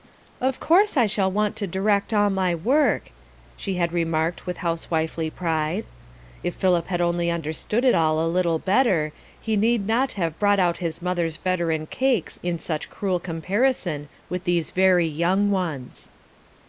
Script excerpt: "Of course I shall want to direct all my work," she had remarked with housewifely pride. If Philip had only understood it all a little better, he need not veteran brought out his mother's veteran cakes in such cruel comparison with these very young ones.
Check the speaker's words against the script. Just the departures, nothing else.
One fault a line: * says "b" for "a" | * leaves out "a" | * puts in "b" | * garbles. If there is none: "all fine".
* says "have" for "veteran"